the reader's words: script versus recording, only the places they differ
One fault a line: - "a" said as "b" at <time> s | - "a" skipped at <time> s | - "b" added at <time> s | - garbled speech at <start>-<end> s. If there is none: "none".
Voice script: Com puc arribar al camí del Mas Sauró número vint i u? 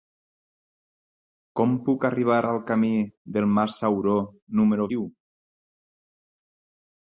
- "vint" skipped at 4.9 s